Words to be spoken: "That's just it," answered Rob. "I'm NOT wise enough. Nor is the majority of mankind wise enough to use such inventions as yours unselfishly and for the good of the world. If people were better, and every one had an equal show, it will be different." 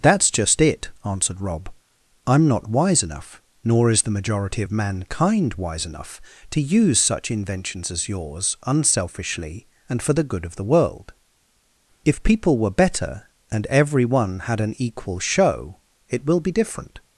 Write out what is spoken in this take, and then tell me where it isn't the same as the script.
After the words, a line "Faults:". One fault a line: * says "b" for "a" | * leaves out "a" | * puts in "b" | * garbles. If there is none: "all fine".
"That's just it," answered Rob. "I'm NOT wise enough. Nor is the majority of mankind wise enough to use such inventions as yours unselfishly and for the good of the world. If people were better, and every one had an equal show, it will be different."
Faults:
all fine